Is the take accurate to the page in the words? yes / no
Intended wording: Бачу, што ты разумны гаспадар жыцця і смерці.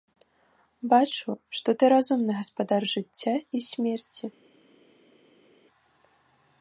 yes